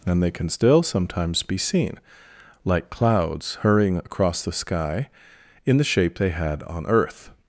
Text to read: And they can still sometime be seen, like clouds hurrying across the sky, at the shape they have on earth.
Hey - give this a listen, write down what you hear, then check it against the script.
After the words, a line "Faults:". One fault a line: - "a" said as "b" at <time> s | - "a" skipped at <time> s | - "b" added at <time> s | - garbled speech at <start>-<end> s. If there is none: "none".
And they can still sometimes be seen, like clouds hurrying across the sky, in the shape they had on earth.
Faults:
- "sometime" said as "sometimes" at 0.8 s
- "at" said as "in" at 5.7 s
- "have" said as "had" at 6.3 s